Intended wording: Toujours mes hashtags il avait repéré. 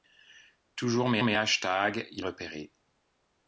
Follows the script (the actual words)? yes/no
no